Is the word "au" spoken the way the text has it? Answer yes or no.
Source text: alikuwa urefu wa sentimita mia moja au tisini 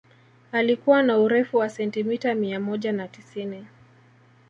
no